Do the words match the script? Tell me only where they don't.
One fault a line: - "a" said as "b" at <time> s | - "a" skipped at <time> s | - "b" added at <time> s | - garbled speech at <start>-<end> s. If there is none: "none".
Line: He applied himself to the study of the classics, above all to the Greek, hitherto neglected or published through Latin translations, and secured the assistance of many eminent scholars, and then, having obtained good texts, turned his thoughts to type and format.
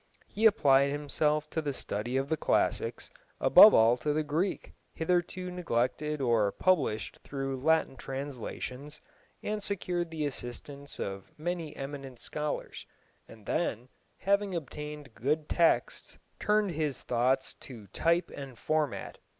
none